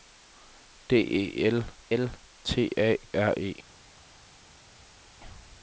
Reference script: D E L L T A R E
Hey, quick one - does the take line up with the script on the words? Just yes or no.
yes